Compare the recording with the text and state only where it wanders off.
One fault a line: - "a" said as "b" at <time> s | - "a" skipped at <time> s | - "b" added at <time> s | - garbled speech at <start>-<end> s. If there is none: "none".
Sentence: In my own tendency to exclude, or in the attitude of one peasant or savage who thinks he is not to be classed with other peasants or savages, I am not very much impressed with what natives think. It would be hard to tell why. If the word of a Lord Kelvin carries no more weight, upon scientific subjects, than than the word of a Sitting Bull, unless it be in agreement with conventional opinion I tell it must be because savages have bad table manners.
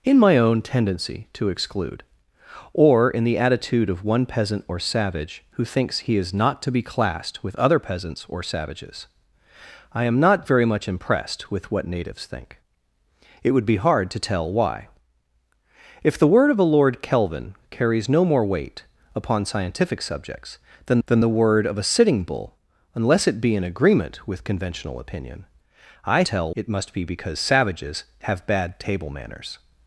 none